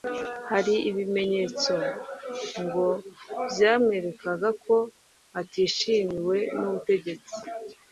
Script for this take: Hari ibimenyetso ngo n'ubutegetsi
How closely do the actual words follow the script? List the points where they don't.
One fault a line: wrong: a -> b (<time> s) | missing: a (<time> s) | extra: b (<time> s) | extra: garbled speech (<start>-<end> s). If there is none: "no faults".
extra: byamwerekaga ko atishimiwe (3.5 s)